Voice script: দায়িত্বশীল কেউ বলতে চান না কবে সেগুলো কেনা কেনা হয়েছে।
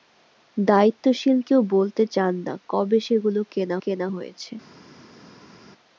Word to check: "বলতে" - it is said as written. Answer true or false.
true